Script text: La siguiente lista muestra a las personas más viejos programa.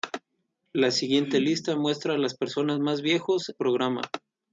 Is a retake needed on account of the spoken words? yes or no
no